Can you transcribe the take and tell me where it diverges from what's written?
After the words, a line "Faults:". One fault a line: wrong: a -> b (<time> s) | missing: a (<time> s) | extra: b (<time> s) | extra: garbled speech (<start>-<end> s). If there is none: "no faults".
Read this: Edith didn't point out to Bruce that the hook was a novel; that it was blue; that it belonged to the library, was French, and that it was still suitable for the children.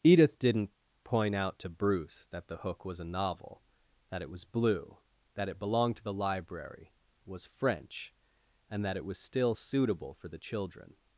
Edith didn't point out to Bruce that the hook was a novel; that it was blue; that it belonged to the library, was French, and that it was still suitable for the children.
Faults:
no faults